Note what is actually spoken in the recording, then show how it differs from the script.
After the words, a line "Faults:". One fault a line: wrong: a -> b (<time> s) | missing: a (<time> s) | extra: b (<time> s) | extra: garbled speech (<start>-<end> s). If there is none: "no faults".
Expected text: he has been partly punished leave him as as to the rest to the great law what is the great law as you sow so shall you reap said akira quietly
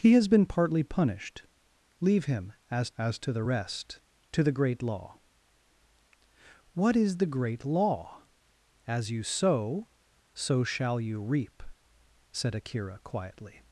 he has been partly punished leave him as as to the rest to the great law what is the great law as you sow so shall you reap said akira quietly
Faults:
no faults